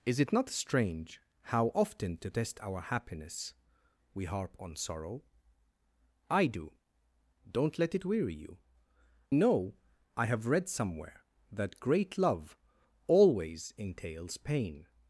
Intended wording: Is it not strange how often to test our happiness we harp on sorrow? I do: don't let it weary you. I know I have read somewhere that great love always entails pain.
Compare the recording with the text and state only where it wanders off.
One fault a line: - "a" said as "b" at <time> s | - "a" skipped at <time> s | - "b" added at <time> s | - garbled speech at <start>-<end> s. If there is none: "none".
- "I" skipped at 8.6 s